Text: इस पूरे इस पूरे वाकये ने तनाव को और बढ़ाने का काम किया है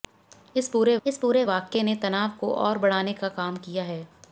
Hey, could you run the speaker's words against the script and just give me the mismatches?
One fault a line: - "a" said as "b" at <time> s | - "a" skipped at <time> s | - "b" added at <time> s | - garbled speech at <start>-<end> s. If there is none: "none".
none